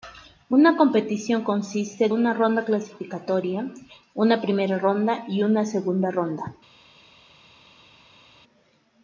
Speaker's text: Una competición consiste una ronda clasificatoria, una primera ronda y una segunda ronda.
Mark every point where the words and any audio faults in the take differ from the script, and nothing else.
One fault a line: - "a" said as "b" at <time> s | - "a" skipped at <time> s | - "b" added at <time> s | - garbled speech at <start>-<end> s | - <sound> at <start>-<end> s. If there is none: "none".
none